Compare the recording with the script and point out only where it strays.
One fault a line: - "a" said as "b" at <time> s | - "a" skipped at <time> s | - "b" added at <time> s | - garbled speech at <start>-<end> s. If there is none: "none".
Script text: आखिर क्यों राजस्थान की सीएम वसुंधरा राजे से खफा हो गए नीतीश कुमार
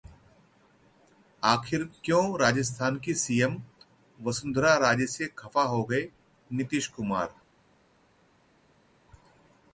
none